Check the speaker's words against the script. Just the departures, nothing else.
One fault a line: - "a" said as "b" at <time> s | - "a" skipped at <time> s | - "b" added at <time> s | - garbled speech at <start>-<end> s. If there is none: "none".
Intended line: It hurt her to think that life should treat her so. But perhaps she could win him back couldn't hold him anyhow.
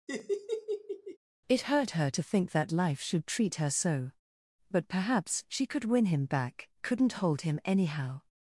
none